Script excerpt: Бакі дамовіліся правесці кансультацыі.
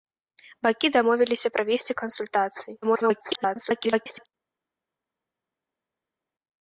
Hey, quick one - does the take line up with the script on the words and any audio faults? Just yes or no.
no